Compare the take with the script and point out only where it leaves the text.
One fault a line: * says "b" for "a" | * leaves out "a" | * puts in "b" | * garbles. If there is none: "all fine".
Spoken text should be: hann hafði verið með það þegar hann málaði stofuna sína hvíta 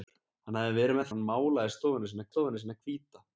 * says "hann málaði stofuna sína" for "það þegar hann málaði"